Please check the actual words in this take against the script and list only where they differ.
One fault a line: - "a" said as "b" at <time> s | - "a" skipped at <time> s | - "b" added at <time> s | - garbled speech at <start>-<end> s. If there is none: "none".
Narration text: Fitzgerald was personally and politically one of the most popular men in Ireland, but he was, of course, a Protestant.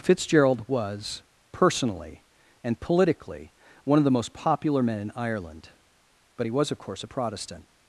none